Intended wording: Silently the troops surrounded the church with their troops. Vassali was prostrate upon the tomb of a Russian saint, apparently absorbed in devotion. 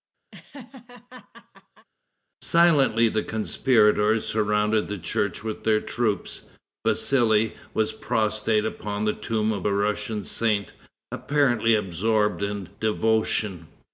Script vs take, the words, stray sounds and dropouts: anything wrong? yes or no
yes